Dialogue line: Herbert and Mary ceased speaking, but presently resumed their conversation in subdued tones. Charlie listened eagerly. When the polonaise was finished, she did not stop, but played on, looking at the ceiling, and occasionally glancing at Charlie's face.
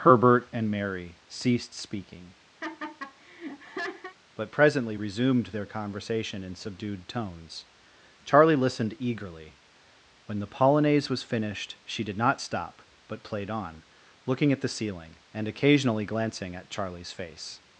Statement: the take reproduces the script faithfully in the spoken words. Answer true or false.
true